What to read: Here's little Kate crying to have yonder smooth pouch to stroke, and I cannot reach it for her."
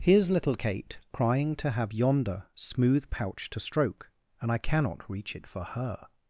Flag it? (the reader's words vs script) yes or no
no